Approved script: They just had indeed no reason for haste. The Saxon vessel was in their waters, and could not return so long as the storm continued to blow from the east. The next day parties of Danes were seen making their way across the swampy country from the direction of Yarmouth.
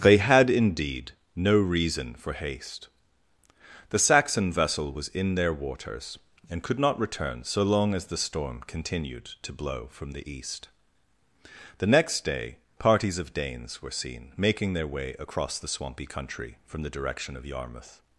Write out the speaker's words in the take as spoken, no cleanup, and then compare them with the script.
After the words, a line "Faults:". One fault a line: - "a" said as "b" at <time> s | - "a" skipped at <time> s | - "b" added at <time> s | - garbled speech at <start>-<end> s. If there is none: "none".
They had indeed no reason for haste. The Saxon vessel was in their waters, and could not return so long as the storm continued to blow from the east. The next day parties of Danes were seen making their way across the swampy country from the direction of Yarmouth.
Faults:
- "just" skipped at 0.2 s